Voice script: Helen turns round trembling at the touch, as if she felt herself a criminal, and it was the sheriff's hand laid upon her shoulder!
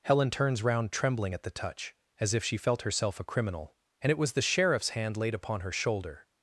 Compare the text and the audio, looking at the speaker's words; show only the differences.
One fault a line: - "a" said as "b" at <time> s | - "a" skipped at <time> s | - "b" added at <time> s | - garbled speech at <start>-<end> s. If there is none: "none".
none